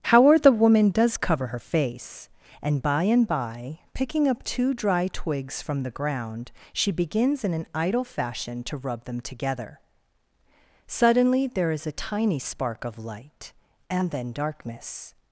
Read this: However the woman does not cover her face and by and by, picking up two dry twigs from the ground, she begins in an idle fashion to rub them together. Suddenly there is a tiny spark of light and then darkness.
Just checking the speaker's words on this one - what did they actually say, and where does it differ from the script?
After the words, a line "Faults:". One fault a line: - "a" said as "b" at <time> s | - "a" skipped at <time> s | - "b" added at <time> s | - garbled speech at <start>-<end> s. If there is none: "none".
However the woman does cover her face and by and by, picking up two dry twigs from the ground, she begins in an idle fashion to rub them together. Suddenly there is a tiny spark of light and then darkness.
Faults:
- "not" skipped at 1.2 s